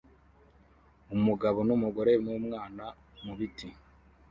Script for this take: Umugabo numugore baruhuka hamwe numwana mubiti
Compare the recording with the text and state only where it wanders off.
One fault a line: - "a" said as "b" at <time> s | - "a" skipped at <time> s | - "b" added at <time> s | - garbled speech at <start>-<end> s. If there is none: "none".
- "baruhuka hamwe" skipped at 2.1 s